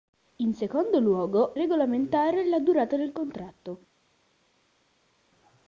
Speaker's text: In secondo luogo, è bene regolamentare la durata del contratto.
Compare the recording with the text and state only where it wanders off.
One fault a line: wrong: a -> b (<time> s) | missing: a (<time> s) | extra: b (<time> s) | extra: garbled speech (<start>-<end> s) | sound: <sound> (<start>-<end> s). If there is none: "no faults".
missing: è bene (1.6 s)